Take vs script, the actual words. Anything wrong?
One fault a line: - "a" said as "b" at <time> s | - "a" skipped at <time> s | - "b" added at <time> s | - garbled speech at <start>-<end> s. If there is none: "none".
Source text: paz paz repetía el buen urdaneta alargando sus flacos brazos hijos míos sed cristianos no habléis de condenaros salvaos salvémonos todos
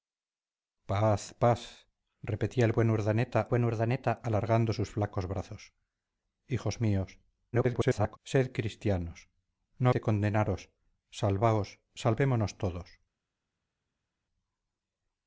- "buen urdaneta" added at 3.5 s
- garbled speech at 7.5-8.2 s
- "habléis" skipped at 9.9 s